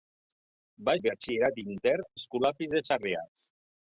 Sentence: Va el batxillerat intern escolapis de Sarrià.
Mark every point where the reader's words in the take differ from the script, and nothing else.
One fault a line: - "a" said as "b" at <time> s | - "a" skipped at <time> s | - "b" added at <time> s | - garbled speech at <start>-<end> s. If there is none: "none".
none